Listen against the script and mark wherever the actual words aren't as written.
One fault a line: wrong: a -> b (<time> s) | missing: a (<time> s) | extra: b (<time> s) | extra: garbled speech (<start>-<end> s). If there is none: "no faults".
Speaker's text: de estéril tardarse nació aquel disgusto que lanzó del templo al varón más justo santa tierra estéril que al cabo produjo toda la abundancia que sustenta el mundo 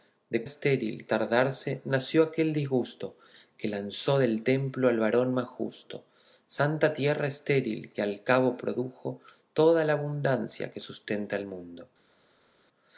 no faults